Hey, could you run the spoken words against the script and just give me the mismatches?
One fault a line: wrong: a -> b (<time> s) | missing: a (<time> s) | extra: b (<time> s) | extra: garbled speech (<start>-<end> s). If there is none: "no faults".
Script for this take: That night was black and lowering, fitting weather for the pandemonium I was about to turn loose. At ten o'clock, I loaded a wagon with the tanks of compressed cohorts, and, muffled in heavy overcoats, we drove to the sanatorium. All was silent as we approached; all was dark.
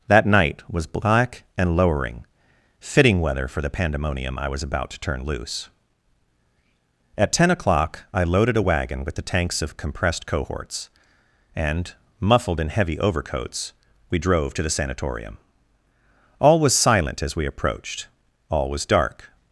no faults